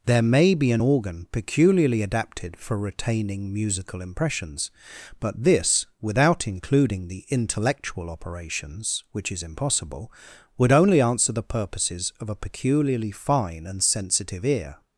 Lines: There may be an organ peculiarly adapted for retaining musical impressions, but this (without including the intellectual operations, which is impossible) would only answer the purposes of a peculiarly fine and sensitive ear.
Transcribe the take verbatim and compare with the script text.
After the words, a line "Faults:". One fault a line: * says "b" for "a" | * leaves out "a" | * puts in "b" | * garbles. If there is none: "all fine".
There may be an organ peculiarly adapted for retaining musical impressions, but this (without including the intellectual operations, which is impossible) would only answer the purposes of a peculiarly fine and sensitive ear.
Faults:
all fine